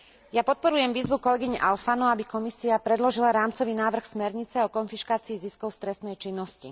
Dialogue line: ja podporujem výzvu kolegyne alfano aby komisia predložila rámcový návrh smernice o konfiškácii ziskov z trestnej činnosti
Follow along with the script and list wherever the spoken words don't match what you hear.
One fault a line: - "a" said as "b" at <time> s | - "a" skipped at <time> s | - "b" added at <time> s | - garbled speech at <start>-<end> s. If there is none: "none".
none